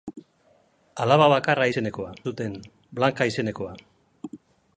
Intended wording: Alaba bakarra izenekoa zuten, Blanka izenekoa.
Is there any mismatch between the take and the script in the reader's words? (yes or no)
no